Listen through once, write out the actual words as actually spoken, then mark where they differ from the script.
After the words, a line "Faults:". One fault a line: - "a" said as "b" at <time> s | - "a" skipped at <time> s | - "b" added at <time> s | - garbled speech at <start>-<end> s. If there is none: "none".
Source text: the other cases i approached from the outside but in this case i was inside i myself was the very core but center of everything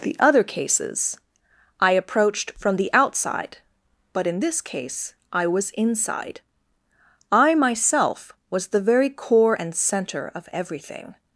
the other cases i approached from the outside but in this case i was inside i myself was the very core and center of everything
Faults:
- "but" said as "and" at 9.5 s